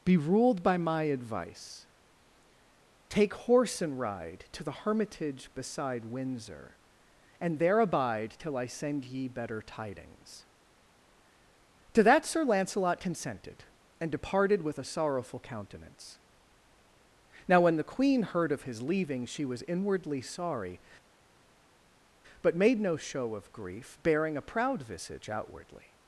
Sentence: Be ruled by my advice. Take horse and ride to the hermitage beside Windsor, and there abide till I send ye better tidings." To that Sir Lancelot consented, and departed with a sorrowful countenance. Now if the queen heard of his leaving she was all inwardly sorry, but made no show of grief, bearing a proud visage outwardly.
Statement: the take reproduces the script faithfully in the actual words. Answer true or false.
false